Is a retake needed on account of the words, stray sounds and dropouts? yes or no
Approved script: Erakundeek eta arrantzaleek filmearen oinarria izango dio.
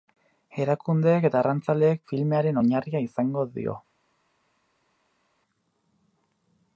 no